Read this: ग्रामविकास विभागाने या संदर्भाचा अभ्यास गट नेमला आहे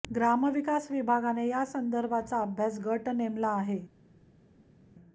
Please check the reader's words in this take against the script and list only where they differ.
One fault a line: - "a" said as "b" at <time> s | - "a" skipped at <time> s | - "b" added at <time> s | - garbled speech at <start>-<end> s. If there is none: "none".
none